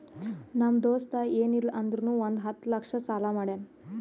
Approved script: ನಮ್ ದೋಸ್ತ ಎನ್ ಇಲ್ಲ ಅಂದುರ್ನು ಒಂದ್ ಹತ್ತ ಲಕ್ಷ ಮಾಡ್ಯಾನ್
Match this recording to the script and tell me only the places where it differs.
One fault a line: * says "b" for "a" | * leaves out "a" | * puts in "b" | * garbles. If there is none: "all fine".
* puts in "ಸಾಲಾ"